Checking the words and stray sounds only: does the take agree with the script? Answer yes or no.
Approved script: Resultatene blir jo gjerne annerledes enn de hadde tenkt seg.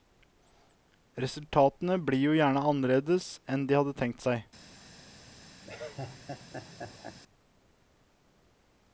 no